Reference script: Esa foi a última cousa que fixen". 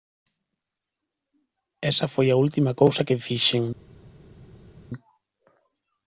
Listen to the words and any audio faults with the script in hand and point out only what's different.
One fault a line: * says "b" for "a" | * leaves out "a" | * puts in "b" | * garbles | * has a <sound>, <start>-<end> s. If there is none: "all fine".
all fine